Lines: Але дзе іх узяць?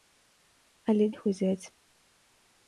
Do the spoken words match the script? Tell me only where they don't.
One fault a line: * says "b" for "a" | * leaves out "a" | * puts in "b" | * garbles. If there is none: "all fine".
* leaves out "дзе"